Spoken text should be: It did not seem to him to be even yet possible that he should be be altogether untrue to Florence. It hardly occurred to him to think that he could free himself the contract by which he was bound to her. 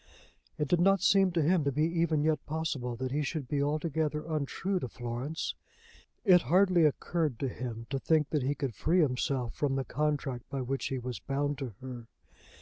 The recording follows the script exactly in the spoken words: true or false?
false